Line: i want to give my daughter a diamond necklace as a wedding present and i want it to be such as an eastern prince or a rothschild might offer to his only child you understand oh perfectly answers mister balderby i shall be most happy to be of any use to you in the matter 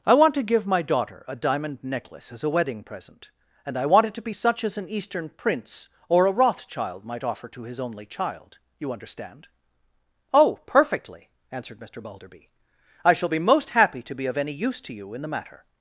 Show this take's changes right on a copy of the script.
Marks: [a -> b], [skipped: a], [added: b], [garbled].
i want to give my daughter a diamond necklace as a wedding present and i want it to be such as an eastern prince or a rothschild might offer to his only child you understand oh perfectly [answers -> answered] mister balderby i shall be most happy to be of any use to you in the matter